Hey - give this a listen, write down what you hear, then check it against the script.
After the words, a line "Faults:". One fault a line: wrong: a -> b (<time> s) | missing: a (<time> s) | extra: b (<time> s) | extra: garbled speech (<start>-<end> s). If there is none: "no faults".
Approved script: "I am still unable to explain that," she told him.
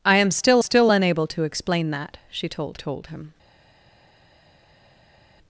"I am still still unable to explain that," she told told him.
Faults:
extra: still (0.6 s)
extra: told (2.8 s)